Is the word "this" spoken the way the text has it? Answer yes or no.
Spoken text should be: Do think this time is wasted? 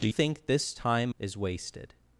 yes